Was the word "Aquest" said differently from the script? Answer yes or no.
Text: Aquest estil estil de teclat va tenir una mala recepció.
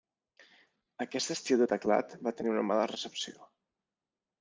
no